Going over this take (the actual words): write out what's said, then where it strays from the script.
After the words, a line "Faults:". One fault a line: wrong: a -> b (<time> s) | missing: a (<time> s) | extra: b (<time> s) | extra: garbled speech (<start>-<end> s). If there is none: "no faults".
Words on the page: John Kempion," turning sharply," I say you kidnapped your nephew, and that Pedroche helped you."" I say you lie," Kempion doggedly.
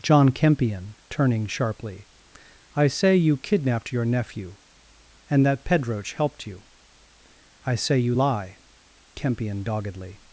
John Kempion," turning sharply," I say you kidnapped your nephew, and that Pedroche helped you."" I say you lie," Kempion doggedly.
Faults:
no faults